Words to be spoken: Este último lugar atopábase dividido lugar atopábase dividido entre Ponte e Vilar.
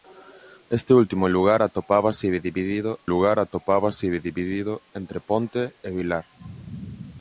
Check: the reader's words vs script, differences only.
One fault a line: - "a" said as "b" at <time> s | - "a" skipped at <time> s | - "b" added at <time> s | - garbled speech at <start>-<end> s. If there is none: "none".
none